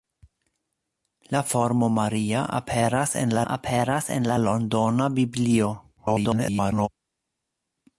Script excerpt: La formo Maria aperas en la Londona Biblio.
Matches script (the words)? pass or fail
fail